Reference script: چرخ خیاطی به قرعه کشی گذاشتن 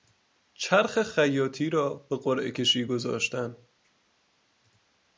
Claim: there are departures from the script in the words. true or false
true